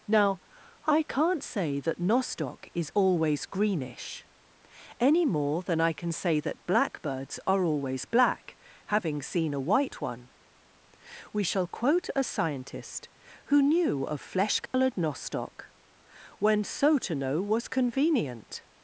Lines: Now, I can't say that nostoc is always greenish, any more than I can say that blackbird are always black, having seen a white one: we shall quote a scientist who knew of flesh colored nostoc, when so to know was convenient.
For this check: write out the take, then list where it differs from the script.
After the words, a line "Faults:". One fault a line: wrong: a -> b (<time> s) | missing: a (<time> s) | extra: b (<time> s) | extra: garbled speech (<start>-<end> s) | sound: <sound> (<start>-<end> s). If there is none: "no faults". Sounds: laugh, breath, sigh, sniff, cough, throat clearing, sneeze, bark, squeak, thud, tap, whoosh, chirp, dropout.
Now, I can't say that nostoc is always greenish, any more than I can say that blackbirds are always black, having seen a white one: we shall quote a scientist who knew of flesh colored nostoc, when so to know was convenient.
Faults:
wrong: blackbird -> blackbirds (6.7 s)
sound: dropout (14.7-14.7 s)